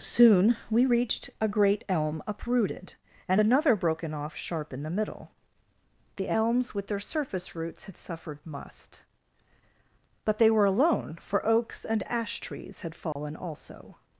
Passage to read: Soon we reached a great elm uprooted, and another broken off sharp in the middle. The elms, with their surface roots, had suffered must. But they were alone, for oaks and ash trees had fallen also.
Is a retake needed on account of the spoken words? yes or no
no